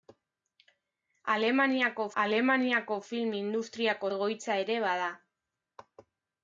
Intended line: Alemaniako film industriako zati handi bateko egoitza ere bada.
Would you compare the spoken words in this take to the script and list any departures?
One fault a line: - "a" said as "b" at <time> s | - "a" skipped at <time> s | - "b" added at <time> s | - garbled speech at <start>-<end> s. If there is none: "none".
- "alemaniako" added at 2.2 s
- "zati handi bateko" skipped at 4.1 s